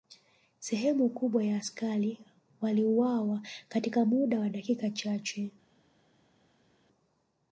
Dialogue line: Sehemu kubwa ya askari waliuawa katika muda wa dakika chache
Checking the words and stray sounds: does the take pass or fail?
pass